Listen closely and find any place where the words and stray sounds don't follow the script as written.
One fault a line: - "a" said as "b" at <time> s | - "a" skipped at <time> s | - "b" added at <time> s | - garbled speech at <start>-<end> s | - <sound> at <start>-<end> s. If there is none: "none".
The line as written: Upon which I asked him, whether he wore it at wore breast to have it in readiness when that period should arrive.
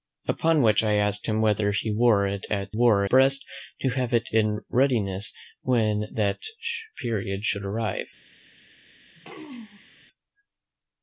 - throat clearing at 9.2-10.1 s